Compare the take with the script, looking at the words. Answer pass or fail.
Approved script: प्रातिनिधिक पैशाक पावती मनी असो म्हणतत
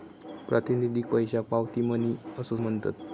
pass